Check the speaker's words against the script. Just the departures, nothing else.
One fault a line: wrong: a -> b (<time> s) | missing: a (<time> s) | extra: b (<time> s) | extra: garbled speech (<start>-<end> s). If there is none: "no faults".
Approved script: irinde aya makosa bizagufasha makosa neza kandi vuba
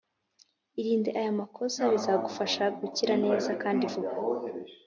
wrong: makosa -> gukira (2.8 s)